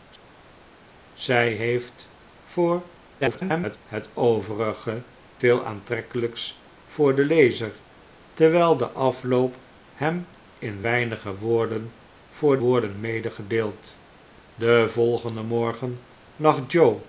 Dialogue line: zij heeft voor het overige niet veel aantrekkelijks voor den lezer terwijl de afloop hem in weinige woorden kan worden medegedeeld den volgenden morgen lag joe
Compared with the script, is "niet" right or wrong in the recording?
wrong